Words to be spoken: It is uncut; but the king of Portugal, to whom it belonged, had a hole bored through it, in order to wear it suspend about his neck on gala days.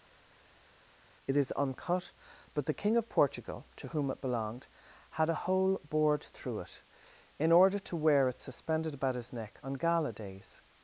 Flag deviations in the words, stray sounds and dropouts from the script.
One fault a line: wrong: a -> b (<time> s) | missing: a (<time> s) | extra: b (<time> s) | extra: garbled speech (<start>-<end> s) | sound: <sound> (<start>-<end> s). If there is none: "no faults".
wrong: suspend -> suspended (8.4 s)